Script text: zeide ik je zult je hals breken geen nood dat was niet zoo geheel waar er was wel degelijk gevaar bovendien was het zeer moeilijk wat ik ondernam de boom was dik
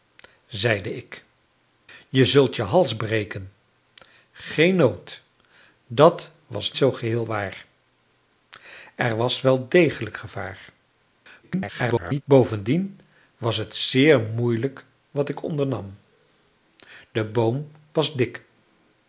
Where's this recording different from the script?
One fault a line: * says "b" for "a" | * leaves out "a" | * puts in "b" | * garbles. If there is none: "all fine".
* leaves out "niet"
* garbles